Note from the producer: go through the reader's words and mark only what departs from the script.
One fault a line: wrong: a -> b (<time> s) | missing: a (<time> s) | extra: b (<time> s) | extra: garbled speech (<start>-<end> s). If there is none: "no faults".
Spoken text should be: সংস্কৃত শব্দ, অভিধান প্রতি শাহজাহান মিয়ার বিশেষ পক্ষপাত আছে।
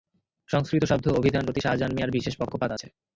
no faults